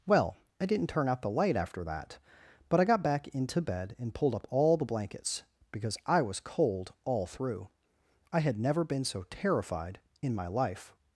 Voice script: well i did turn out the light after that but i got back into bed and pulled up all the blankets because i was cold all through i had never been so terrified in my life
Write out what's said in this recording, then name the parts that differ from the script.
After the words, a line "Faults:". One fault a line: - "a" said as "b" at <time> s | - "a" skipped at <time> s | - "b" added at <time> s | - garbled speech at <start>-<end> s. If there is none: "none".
well i didn't turn out the light after that but i got back into bed and pulled up all the blankets because i was cold all through i had never been so terrified in my life
Faults:
- "did" said as "didn't" at 0.7 s